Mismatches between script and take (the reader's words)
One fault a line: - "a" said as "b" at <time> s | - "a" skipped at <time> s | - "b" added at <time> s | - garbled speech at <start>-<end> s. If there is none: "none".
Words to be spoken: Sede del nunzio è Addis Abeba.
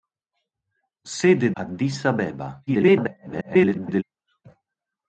- "del nunzio è" skipped at 1.5 s
- garbled speech at 2.7-4.0 s